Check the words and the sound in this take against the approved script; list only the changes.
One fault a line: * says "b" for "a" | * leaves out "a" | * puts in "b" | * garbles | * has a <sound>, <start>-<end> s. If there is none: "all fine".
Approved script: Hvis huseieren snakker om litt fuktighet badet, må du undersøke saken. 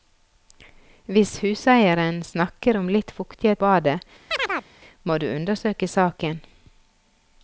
* has a chirp, 4.3-4.7 s